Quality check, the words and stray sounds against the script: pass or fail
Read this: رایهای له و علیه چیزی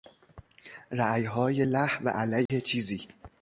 fail